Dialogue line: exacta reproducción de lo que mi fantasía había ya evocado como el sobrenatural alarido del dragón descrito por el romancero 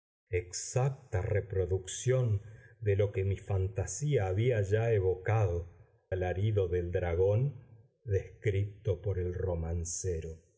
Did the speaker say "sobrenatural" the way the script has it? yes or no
no